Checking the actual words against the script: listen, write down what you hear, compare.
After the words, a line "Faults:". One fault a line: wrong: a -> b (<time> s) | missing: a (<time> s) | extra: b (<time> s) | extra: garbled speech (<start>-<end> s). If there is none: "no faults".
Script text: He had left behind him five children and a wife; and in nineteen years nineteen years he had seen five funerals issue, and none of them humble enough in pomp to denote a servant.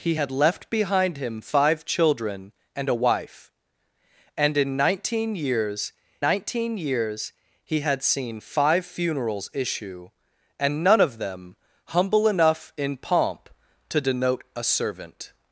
He had left behind him five children and a wife; and in nineteen years nineteen years he had seen five funerals issue, and none of them humble enough in pomp to denote a servant.
Faults:
no faults